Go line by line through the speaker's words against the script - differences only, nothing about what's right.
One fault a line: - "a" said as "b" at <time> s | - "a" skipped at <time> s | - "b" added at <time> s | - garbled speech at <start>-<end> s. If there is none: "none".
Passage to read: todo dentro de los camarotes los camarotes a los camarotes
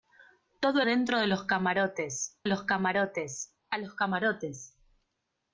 none